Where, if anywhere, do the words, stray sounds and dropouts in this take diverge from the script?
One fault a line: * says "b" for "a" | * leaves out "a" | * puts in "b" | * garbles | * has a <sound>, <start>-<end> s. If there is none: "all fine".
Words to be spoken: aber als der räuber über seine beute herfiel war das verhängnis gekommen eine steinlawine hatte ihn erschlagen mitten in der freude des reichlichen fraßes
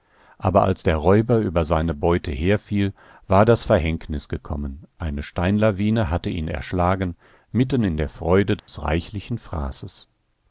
* has a dropout, 8.6-8.7 s